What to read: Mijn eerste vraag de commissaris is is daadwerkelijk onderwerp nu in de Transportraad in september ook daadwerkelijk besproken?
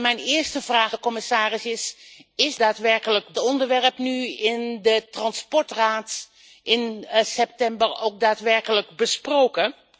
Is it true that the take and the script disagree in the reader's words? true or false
false